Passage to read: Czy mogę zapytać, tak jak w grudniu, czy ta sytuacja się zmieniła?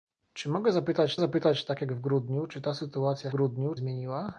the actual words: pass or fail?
fail